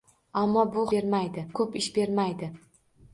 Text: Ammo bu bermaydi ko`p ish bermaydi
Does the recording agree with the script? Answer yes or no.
yes